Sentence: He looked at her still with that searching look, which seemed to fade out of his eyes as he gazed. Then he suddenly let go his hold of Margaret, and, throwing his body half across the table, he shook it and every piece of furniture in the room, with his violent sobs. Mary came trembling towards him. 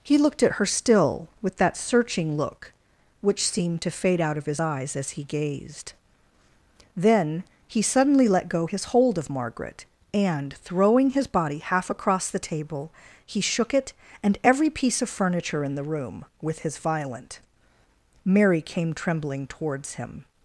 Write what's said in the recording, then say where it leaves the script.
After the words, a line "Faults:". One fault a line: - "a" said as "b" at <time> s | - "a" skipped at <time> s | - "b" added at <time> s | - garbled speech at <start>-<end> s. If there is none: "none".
He looked at her still with that searching look, which seemed to fade out of his eyes as he gazed. Then he suddenly let go his hold of Margaret, and, throwing his body half across the table, he shook it and every piece of furniture in the room, with his violent. Mary came trembling towards him.
Faults:
- "sobs" skipped at 17.4 s